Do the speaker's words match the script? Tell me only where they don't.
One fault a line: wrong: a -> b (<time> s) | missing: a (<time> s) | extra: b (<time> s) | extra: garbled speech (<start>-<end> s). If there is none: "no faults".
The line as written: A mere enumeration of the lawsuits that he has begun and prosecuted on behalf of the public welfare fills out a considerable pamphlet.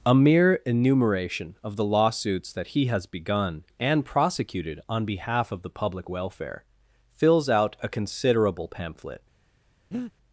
no faults